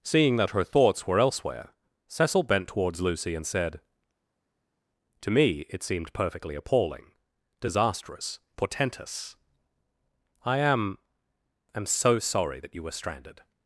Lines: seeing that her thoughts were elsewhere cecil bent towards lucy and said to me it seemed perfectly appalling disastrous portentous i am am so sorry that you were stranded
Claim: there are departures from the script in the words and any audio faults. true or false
false